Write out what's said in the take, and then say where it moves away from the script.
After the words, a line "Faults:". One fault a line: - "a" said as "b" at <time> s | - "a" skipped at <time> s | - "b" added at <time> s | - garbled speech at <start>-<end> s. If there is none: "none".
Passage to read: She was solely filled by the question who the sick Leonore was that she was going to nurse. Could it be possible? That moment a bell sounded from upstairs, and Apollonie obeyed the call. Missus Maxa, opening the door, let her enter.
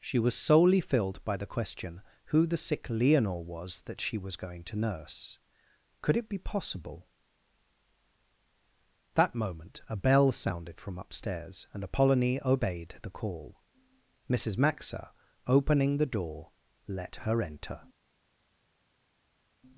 She was solely filled by the question who the sick Leonore was that she was going to nurse. Could it be possible? That moment a bell sounded from upstairs, and Apollonie obeyed the call. Missus Maxa, opening the door, let her enter.
Faults:
none